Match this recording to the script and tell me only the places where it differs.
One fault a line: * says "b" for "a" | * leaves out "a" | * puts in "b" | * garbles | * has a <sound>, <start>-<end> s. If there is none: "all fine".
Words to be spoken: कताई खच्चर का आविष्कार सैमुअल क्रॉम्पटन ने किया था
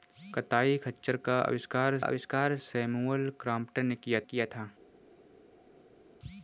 * puts in "आविष्कार"
* puts in "किया"